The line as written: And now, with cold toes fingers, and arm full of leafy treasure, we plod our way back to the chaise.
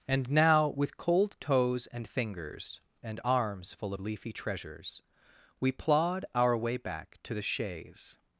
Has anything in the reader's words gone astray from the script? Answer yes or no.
yes